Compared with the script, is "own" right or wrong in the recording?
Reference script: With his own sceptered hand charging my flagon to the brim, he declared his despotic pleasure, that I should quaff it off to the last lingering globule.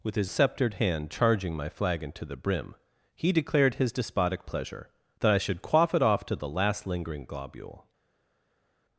wrong